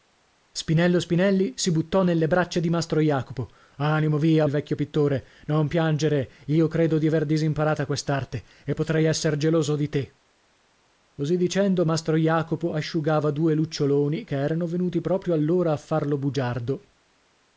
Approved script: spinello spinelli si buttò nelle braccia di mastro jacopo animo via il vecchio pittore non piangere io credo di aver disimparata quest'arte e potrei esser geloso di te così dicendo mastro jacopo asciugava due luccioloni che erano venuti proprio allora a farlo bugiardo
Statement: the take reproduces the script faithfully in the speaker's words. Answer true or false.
true